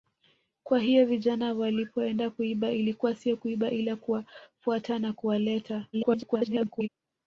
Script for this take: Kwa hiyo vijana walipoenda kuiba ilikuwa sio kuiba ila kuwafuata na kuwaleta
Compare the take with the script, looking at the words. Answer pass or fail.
fail